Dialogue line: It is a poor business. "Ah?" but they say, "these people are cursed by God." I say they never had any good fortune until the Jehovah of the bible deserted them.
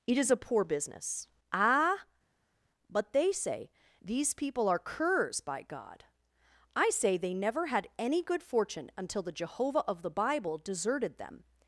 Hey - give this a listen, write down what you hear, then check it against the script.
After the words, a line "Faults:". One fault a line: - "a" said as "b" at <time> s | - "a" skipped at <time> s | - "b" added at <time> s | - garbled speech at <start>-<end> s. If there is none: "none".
It is a poor business. "Ah?" but they say, "these people are curs by God." I say they never had any good fortune until the Jehovah of the bible deserted them.
Faults:
- "cursed" said as "curs" at 4.8 s